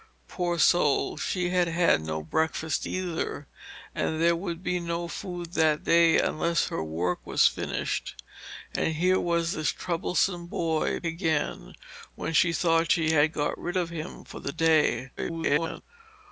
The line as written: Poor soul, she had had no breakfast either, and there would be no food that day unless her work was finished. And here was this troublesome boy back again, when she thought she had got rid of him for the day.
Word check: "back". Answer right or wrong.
wrong